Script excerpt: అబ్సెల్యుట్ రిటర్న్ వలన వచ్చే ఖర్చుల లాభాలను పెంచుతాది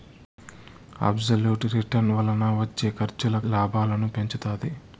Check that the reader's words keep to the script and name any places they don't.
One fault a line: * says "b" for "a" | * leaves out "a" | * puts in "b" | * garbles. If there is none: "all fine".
all fine